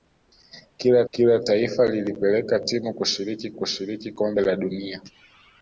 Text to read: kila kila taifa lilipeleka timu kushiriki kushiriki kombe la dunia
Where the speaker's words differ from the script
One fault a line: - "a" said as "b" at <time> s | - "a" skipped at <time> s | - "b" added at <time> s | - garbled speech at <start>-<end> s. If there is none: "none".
none